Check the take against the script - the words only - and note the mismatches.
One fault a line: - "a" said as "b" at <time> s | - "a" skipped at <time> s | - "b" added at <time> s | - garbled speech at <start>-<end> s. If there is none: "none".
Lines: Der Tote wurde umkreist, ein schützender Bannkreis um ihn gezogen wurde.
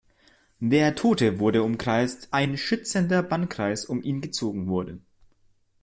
none